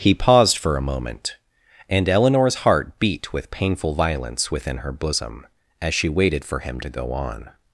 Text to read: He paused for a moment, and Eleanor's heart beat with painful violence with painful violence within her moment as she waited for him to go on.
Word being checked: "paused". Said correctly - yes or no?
yes